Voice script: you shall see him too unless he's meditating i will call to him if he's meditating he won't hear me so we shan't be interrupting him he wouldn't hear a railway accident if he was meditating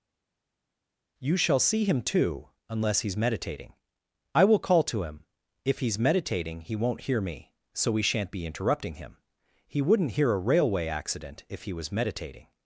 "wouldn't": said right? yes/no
yes